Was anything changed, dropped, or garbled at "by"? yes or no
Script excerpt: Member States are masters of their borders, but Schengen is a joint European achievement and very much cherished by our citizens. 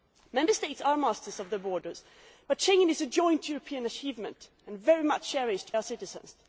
yes